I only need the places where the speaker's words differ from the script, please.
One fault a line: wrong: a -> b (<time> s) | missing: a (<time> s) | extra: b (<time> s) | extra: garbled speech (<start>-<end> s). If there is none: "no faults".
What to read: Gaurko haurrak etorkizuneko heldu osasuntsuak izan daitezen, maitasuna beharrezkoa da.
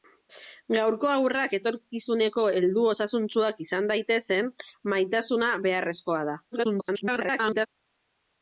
extra: garbled speech (6.5-7.7 s)